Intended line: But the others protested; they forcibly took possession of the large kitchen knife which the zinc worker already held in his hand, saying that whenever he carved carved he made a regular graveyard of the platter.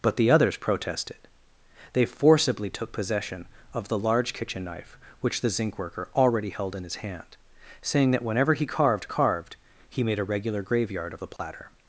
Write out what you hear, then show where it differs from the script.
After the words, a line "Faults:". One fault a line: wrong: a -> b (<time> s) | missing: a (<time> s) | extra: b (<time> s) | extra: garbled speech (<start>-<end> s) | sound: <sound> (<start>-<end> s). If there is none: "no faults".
But the others protested; they forcibly took possession of the large kitchen knife which the zinc worker already held in his hand, saying that whenever he carved carved he made a regular graveyard of the platter.
Faults:
sound: dropout (11.4-11.4 s)